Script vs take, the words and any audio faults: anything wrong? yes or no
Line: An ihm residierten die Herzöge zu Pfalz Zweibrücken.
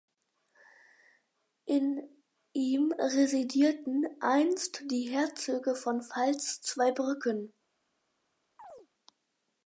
yes